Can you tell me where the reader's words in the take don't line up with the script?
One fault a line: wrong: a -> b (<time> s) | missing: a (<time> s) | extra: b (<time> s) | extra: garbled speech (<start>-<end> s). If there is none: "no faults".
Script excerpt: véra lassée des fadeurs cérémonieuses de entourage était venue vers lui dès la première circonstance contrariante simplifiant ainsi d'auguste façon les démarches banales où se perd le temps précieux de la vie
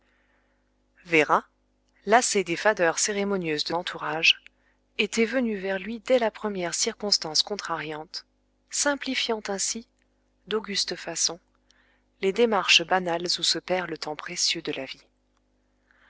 no faults